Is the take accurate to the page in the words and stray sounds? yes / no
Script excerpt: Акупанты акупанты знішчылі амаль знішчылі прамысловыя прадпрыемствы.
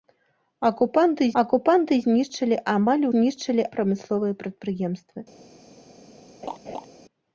no